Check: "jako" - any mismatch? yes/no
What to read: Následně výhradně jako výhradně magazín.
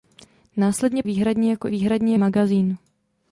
no